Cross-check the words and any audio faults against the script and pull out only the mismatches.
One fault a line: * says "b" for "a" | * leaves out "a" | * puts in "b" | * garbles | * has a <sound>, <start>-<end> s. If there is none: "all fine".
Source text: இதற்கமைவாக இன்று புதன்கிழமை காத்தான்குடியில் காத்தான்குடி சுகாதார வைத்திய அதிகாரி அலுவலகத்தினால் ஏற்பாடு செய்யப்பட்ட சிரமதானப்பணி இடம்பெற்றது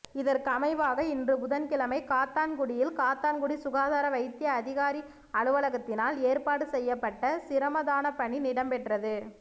all fine